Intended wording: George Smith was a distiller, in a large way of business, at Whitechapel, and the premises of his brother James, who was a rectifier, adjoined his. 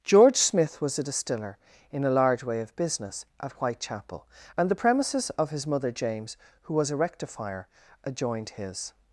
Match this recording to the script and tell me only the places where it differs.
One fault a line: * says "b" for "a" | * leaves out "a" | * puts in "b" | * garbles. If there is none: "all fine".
* says "mother" for "brother"